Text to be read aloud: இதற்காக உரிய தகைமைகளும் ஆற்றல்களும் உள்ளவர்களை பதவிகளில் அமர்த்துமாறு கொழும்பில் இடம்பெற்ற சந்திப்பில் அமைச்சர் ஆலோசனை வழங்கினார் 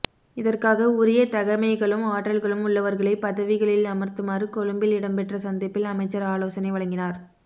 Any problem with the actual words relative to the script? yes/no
no